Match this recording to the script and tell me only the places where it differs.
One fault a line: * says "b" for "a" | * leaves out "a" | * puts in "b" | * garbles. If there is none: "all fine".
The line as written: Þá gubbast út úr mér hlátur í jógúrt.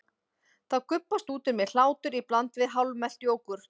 * puts in "bland við hálfmelt"